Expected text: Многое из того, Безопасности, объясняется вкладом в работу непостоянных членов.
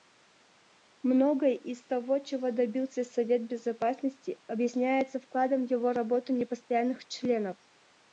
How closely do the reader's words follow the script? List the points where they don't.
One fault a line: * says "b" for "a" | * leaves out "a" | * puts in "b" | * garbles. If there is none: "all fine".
* puts in "чего добился Совет"
* puts in "его"